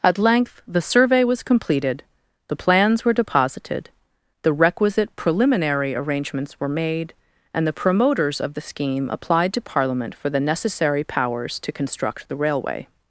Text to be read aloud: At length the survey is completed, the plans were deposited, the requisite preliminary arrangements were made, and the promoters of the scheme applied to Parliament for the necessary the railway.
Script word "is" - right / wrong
wrong